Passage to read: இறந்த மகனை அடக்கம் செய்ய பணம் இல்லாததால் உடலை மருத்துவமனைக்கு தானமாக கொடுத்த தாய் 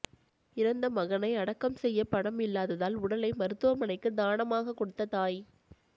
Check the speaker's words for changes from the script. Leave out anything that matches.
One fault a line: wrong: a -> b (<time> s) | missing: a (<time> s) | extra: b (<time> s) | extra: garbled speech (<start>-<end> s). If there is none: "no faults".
no faults